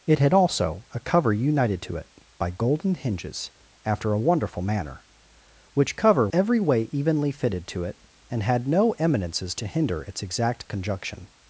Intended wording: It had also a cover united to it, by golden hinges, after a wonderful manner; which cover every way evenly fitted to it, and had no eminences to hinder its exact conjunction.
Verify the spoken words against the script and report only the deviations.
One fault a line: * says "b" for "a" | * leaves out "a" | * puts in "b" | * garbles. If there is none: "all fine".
all fine